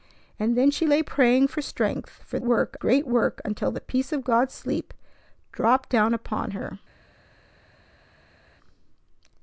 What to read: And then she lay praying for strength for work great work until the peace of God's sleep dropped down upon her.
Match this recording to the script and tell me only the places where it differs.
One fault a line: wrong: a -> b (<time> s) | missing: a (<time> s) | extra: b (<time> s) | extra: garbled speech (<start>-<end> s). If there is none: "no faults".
no faults